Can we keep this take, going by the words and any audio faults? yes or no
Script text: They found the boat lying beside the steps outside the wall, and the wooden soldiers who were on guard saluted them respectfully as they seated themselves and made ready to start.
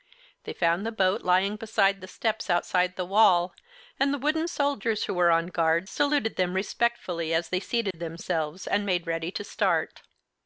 no